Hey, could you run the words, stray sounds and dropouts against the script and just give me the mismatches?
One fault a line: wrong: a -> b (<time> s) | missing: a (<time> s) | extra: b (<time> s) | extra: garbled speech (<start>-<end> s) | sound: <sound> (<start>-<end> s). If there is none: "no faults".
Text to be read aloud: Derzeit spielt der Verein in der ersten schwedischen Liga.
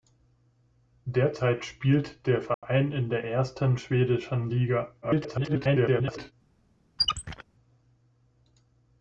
sound: dropout (2.5-2.6 s)
extra: garbled speech (5.0-6.3 s)
sound: squeak (7.0-7.4 s)